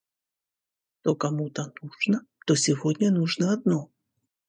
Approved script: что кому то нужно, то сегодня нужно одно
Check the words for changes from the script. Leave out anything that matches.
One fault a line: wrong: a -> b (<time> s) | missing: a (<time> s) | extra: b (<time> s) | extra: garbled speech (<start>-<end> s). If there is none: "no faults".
no faults